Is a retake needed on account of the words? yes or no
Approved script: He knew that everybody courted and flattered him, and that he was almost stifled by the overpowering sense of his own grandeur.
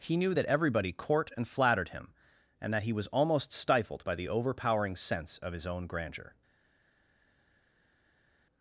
yes